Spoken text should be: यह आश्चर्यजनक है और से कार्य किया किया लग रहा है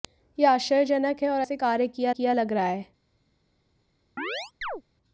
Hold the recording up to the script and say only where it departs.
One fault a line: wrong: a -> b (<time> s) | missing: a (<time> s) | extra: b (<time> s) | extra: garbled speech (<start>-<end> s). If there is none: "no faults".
no faults